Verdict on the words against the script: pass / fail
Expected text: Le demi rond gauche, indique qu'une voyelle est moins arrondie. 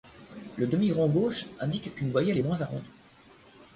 pass